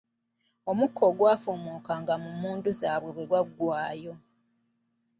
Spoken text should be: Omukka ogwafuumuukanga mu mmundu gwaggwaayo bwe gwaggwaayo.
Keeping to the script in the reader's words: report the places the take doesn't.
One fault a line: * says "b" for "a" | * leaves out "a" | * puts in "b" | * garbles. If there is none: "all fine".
* says "zaabwe" for "gwaggwaayo"